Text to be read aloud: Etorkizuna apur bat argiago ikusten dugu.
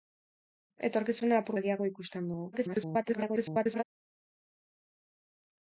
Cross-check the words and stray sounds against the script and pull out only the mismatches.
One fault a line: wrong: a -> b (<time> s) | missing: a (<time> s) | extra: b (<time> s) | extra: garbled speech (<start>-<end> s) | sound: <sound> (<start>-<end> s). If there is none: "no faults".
missing: bat (1.6 s)
extra: garbled speech (2.5-3.8 s)